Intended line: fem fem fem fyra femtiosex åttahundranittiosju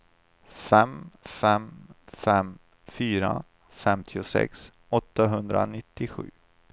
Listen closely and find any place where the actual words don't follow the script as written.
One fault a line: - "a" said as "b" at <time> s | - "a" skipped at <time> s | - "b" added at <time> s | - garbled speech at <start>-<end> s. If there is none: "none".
none